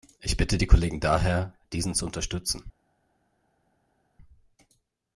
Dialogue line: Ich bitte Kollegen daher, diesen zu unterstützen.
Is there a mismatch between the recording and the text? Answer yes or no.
yes